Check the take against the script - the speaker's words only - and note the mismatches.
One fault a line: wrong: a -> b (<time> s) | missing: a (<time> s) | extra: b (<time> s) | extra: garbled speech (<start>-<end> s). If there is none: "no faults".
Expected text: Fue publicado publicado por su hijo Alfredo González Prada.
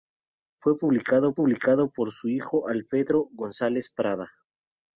no faults